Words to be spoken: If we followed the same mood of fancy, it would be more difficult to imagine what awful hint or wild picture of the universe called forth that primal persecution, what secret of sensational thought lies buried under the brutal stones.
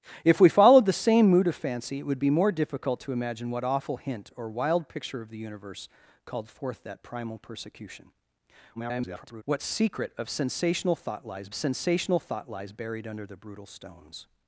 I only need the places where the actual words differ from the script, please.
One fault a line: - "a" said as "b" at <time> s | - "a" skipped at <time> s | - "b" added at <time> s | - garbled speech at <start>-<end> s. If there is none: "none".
- garbled speech at 8.7-9.4 s
- "sensational thought lies" added at 11.5 s